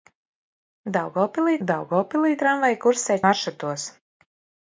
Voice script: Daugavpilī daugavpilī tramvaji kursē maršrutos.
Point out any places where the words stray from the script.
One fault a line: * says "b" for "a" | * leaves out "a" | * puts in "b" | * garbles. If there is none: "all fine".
all fine